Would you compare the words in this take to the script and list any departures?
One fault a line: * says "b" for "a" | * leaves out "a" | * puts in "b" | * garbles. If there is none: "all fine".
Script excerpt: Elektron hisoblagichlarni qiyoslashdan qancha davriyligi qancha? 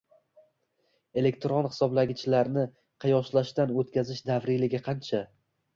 * says "o‘tkazish" for "qancha"